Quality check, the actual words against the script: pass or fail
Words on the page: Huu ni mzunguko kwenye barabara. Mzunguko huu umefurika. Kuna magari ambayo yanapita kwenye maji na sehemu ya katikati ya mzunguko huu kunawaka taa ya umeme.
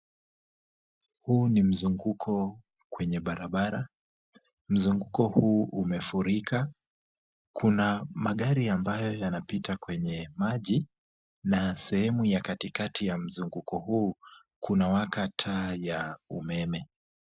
pass